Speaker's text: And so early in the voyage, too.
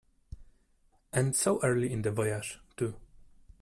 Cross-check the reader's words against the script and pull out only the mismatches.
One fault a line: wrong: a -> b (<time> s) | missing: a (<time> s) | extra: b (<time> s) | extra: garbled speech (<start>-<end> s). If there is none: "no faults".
no faults